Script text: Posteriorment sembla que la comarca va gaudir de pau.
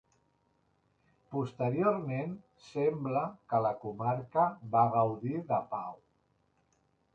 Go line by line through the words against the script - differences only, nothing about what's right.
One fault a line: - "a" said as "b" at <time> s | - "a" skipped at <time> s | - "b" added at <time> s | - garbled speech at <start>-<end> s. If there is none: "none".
none